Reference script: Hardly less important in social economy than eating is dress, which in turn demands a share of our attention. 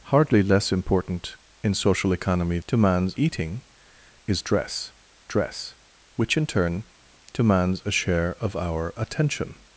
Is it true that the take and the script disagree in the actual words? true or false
true